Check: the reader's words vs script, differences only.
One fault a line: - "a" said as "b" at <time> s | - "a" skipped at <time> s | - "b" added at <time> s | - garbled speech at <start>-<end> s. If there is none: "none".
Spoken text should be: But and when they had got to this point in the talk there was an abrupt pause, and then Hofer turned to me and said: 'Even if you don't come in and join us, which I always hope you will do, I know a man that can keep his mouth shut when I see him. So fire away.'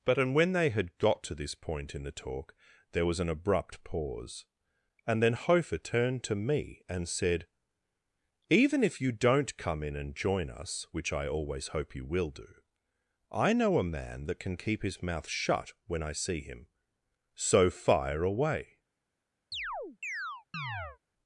none